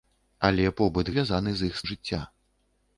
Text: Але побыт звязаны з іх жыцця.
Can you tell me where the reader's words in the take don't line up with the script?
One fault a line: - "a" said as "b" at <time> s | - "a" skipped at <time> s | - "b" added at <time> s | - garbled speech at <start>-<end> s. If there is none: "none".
none